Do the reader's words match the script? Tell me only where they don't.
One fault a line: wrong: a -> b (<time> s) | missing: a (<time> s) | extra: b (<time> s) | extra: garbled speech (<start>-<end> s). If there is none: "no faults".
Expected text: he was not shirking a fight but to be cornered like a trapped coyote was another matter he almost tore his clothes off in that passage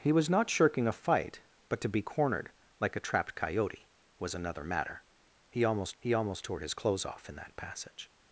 extra: he almost (6.0 s)